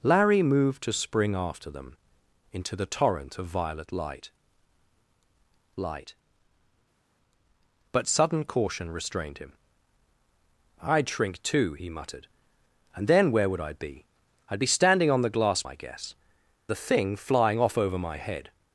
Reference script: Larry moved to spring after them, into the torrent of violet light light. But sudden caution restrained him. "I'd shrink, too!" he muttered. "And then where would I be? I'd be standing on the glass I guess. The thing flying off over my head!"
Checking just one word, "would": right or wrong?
right